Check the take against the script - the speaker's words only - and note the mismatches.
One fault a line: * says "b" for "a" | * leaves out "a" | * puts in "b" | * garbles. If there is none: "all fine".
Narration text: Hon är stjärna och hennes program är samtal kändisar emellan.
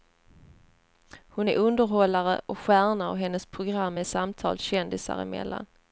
* puts in "underhållare och"